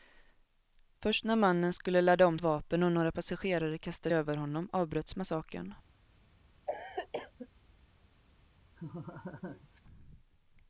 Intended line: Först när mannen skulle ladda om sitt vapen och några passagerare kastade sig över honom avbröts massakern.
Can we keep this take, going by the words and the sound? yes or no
no